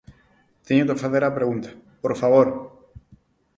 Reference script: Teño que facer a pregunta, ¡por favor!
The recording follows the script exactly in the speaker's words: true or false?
true